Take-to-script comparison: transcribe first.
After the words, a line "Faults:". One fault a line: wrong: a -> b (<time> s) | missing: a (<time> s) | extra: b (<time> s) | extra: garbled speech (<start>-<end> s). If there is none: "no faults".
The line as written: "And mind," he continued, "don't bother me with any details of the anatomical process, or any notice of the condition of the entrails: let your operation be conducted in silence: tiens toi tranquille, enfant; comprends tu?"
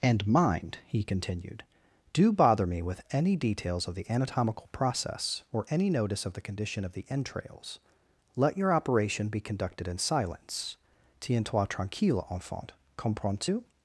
"And mind," he continued, "do bother me with any details of the anatomical process, or any notice of the condition of the entrails: let your operation be conducted in silence: tiens toi tranquille, enfant; comprends tu?"
Faults:
wrong: don't -> do (2.1 s)